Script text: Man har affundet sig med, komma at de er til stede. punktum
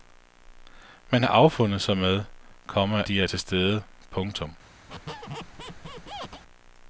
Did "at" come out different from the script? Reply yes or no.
yes